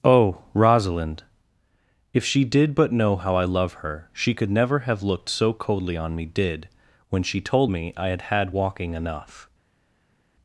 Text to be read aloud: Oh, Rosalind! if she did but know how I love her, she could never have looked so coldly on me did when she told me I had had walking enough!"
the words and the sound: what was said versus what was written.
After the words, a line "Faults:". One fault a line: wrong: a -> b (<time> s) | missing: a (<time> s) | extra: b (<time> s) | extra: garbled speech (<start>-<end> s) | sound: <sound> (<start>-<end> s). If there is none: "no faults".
Oh, Rosalind! if she did but know how I love her, she could never have looked so coldly on me did when she told me I had had walking enough!"
Faults:
no faults